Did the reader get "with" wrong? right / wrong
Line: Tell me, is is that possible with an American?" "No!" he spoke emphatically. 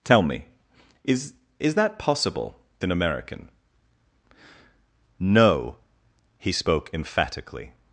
wrong